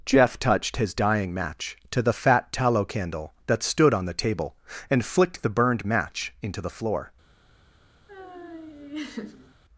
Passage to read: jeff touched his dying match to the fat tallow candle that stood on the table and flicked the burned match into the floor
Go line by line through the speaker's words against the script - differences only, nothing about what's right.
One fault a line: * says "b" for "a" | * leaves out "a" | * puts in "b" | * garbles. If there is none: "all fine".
all fine